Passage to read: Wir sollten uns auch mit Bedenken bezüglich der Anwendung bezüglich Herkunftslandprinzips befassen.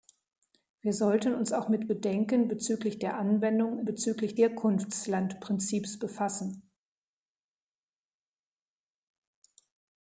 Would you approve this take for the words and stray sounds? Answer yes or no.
yes